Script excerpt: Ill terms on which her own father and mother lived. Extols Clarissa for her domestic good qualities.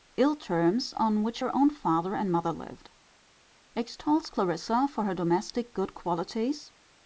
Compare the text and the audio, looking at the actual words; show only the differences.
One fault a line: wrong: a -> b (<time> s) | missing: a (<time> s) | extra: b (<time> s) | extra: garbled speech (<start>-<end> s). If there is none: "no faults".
no faults